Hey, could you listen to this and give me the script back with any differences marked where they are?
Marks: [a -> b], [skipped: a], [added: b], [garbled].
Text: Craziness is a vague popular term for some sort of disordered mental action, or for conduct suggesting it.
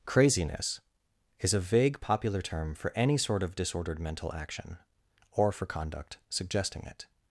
Craziness is a vague popular term for [some -> any] sort of disordered mental action, or for conduct suggesting it.